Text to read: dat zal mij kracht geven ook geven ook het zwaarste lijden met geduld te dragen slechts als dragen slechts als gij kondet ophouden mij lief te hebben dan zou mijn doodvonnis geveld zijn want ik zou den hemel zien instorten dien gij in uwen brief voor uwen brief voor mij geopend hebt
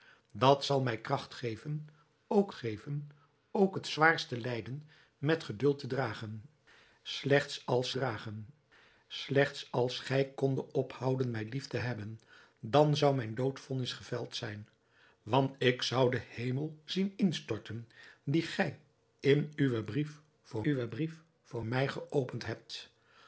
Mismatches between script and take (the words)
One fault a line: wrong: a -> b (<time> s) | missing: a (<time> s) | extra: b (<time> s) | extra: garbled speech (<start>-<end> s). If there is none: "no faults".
no faults